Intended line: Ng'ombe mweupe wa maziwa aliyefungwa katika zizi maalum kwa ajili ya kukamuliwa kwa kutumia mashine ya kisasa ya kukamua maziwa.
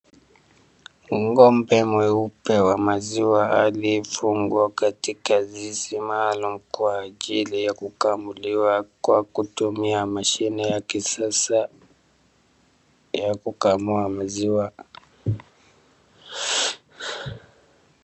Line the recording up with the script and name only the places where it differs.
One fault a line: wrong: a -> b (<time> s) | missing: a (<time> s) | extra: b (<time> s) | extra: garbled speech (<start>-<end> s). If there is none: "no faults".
no faults